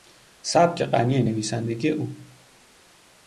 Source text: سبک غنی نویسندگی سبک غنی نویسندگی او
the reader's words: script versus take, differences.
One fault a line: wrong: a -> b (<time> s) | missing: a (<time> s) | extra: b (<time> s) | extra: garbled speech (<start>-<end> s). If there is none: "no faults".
missing: سبک غنی نویسندگی (1.9 s)